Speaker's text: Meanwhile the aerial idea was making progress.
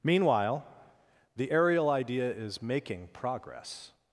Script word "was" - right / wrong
wrong